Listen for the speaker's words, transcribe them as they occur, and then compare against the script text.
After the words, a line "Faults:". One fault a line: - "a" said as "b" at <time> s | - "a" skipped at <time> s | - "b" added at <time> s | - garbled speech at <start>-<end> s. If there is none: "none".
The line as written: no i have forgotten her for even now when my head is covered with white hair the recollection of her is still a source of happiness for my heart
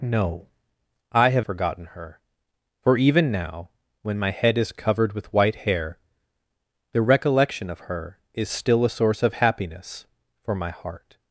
no i have forgotten her for even now when my head is covered with white hair the recollection of her is still a source of happiness for my heart
Faults:
none